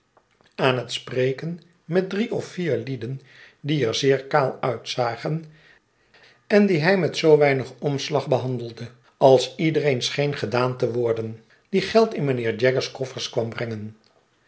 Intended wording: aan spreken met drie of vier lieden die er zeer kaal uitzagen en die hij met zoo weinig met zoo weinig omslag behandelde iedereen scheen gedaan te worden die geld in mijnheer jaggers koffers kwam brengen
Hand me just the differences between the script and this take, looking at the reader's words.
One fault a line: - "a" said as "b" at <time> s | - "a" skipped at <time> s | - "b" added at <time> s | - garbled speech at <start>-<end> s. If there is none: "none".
- "het" added at 0.8 s
- "met zoo weinig" skipped at 7.7 s
- "als" added at 9.2 s